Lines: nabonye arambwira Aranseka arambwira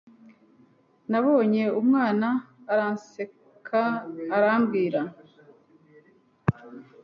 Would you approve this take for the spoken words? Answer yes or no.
no